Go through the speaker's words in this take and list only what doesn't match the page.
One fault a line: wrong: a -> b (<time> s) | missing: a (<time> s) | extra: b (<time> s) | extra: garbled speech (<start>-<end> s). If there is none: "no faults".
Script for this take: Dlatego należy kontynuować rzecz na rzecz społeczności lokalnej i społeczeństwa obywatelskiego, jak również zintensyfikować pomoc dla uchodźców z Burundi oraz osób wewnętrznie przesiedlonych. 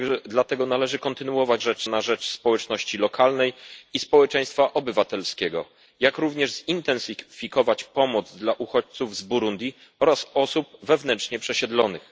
no faults